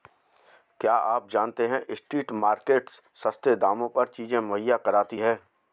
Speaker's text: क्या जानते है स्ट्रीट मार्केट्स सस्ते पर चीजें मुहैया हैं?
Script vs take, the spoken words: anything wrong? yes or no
yes